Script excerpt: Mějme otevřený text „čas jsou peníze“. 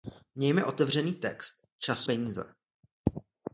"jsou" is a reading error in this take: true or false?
true